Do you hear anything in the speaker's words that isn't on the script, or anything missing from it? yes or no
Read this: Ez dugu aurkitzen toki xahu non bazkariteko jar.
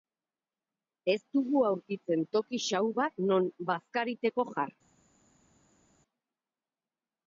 yes